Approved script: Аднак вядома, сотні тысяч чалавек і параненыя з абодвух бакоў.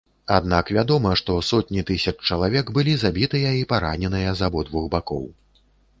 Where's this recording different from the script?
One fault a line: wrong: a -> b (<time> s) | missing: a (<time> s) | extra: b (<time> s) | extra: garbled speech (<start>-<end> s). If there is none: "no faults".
extra: што (1.2 s)
extra: былі забітыя (2.8 s)